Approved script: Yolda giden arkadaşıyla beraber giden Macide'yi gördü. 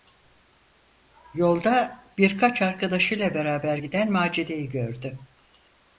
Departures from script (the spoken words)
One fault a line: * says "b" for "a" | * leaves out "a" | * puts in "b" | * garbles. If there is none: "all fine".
* says "birkaç" for "giden"